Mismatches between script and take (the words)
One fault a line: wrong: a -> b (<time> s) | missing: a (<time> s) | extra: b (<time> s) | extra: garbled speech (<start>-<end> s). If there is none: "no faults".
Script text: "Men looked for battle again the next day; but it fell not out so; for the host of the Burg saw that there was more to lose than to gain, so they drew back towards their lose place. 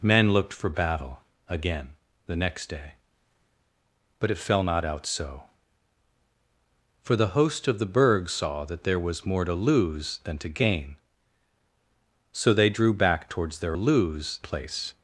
no faults